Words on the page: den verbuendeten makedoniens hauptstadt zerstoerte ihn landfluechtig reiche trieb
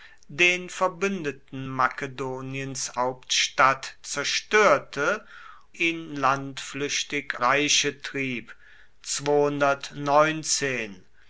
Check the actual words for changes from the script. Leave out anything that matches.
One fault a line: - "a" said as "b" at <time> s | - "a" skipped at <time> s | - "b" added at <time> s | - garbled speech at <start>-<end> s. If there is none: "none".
none